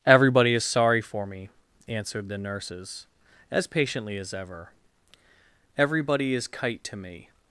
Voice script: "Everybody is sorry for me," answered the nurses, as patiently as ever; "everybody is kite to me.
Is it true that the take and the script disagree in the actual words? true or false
false